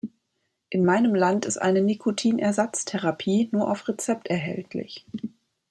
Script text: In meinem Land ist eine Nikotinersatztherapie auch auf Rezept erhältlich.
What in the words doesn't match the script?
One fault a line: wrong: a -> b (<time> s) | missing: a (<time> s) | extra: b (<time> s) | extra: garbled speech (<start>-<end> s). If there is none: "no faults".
wrong: auch -> nur (3.5 s)